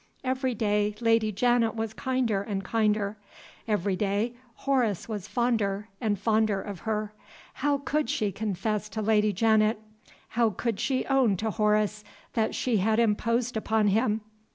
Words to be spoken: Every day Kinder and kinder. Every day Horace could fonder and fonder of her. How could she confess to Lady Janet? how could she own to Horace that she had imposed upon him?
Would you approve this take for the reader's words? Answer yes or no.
no